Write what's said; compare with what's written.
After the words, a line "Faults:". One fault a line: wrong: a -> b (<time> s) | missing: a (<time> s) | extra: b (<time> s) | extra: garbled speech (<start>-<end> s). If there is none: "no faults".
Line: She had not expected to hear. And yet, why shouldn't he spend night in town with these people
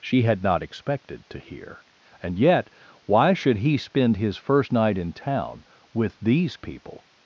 She had not expected to hear. And yet, why should he spend his first night in town with these people
Faults:
wrong: shouldn't -> should (3.3 s)
extra: his first (4.2 s)